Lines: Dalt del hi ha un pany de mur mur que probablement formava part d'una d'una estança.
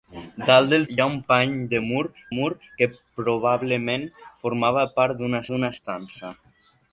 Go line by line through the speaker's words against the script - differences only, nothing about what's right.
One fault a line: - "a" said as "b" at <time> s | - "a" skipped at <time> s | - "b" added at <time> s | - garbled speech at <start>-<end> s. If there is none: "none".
none